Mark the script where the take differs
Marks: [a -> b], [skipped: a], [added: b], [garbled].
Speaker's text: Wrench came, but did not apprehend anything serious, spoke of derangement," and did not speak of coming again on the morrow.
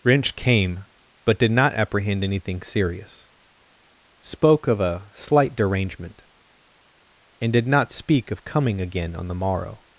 Wrench came, but did not apprehend anything serious, spoke of [added: a slight] derangement," and did not speak of coming again on the morrow.